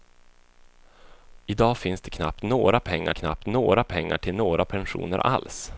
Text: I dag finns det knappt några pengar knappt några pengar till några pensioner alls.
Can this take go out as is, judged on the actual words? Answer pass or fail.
pass